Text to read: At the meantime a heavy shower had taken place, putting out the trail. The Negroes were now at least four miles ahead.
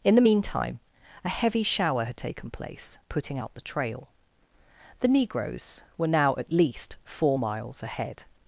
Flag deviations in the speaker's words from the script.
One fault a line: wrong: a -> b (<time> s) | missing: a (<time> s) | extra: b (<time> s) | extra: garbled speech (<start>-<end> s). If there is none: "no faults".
wrong: At -> In (0.0 s)